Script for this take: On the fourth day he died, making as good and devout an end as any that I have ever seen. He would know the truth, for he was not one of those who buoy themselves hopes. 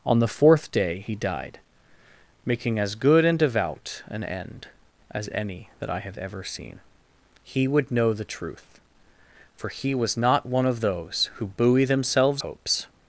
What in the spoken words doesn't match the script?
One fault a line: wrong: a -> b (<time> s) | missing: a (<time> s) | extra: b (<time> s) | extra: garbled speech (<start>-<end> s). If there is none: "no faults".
no faults